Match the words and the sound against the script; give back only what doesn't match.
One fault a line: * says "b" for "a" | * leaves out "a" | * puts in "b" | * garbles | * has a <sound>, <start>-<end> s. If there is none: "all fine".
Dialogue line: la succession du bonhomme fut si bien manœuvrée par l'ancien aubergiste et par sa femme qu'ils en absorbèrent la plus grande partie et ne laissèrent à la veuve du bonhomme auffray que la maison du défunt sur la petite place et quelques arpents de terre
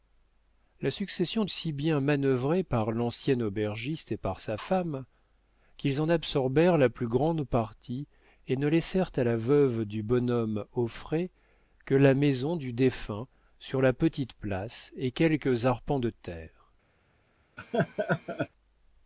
* leaves out "du bonhomme fut"
* has a laugh, 17.6-18.5 s